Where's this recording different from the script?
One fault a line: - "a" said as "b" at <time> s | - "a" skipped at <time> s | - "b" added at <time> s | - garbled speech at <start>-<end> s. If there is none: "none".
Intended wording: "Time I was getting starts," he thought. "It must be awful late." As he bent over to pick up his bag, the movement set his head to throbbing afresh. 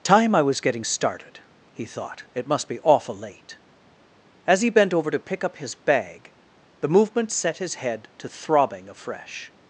- "starts" said as "started" at 0.8 s